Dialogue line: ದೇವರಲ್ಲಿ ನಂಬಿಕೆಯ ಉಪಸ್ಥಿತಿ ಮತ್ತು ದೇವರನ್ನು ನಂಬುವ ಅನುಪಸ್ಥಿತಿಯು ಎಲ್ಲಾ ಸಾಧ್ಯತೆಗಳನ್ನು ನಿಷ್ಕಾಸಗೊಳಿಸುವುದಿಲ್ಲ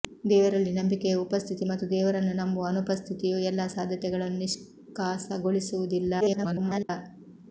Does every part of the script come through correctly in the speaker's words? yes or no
no